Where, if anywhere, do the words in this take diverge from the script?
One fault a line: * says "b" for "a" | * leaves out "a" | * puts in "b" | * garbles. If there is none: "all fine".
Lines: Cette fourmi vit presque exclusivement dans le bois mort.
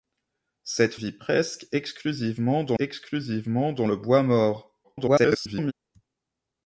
* leaves out "fourmi"
* puts in "exclusivement dans"
* garbles